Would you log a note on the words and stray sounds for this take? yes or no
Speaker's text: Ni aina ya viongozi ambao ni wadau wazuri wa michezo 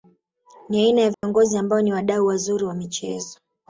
yes